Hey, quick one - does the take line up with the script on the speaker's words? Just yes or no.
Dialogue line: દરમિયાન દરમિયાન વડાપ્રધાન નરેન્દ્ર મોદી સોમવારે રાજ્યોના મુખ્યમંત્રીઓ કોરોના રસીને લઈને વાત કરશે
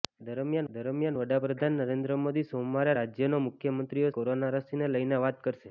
yes